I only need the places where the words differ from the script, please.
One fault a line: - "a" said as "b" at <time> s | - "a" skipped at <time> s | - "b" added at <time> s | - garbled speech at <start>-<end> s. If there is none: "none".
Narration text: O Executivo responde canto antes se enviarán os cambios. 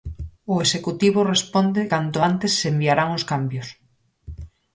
none